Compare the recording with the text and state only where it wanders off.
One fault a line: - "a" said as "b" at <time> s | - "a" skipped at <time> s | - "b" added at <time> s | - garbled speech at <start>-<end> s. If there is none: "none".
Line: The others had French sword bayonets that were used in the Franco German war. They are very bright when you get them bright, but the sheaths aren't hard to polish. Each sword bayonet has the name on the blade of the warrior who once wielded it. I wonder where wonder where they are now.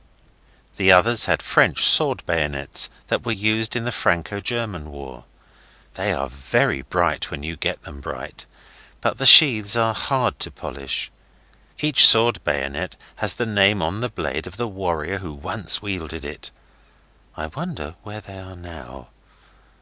- "aren't" said as "are" at 9.7 s
- "wonder where" skipped at 18.2 s